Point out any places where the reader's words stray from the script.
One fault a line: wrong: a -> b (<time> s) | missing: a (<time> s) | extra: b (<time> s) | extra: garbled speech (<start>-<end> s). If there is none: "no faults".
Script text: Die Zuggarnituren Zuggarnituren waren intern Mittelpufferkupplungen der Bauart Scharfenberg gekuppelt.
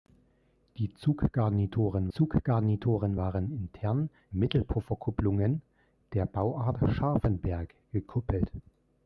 no faults